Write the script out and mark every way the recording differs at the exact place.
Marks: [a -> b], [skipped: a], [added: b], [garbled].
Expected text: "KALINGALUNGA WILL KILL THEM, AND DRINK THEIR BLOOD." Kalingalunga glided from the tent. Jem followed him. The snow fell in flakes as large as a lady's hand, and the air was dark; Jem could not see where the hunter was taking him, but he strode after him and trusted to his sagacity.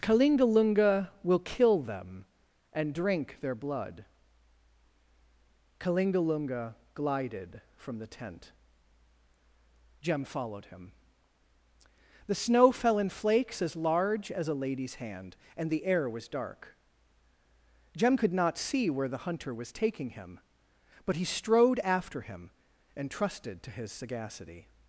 "KALINGALUNGA WILL KILL THEM, AND DRINK THEIR BLOOD." Kalingalunga glided from the tent. Jem followed him. The snow fell in flakes as large as a lady's hand, and the air was dark; Jem could not see where the hunter was taking him, but he strode after him and trusted to his sagacity.